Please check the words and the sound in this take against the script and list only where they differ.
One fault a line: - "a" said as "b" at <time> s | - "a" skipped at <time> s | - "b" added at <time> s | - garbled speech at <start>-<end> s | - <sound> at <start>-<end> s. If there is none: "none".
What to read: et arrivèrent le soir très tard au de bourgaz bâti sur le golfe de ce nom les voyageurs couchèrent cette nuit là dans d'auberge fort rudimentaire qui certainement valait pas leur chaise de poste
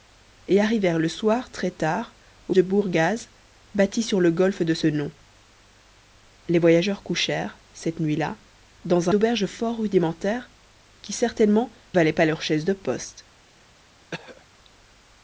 - throat clearing at 14.1-14.5 s